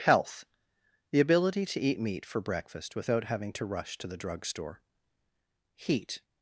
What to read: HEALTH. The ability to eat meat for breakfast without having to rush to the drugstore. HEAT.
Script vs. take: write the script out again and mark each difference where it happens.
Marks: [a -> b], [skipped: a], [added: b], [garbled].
HEALTH. The ability to eat meat for breakfast without having to rush to the drugstore. HEAT.